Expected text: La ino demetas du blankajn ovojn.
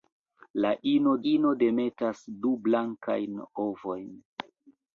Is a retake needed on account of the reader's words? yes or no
yes